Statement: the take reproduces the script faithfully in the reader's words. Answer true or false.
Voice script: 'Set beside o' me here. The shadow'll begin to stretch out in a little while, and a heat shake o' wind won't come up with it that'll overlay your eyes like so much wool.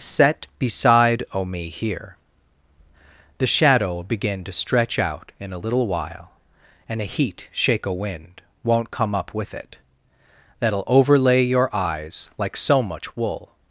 true